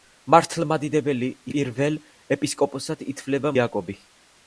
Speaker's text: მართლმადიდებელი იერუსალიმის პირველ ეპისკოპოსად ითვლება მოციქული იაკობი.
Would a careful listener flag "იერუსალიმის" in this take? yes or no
yes